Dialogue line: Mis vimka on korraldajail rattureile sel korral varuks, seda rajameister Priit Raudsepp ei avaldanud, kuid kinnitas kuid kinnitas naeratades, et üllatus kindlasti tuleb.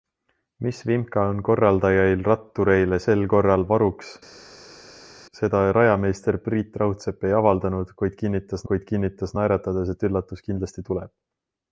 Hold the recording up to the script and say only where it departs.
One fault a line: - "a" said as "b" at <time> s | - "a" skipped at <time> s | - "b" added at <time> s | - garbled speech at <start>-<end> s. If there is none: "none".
none